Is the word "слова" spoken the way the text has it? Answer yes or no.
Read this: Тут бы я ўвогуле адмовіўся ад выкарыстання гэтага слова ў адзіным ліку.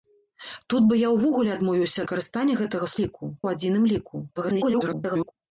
no